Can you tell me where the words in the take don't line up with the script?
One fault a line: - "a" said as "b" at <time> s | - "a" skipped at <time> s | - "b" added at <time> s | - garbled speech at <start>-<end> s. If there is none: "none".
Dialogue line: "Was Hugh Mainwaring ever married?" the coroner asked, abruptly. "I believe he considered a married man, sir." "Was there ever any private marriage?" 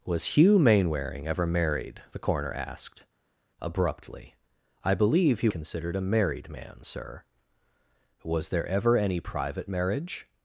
none